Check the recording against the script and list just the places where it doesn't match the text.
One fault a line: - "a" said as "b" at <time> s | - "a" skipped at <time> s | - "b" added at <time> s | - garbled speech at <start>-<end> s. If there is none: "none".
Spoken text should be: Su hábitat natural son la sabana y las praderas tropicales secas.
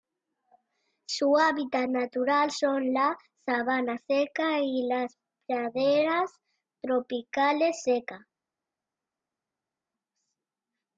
- "seca" added at 3.9 s